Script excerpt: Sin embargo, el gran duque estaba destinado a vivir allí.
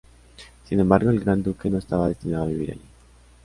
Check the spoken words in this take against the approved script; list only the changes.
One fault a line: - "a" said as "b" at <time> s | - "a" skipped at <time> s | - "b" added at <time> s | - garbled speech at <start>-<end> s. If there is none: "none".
- "no" added at 1.7 s